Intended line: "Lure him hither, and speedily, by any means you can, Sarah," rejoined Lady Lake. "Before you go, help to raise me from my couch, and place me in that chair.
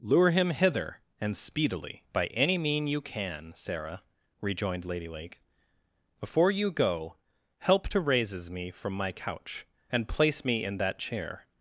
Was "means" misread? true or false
true